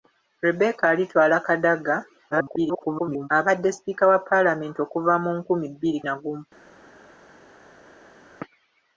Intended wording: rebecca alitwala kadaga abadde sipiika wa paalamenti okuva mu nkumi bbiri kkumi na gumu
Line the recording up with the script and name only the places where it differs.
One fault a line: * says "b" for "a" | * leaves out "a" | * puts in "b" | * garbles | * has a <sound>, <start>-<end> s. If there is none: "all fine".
* garbles
* leaves out "kkumi"